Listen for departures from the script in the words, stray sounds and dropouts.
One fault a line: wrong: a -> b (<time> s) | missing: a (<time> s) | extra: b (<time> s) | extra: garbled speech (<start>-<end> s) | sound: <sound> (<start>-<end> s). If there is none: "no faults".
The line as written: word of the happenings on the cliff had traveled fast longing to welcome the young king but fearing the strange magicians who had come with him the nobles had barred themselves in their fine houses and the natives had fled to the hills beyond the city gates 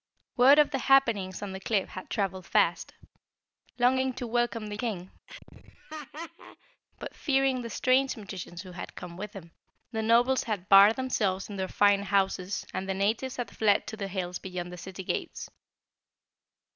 missing: young (4.8 s)
sound: laugh (5.3-6.8 s)